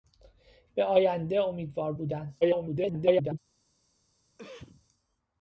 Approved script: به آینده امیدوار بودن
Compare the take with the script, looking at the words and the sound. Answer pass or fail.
fail